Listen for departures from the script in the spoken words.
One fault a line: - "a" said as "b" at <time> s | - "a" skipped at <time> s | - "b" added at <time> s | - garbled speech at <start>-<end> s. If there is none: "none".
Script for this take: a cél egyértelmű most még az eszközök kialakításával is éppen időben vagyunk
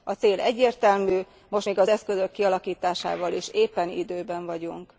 none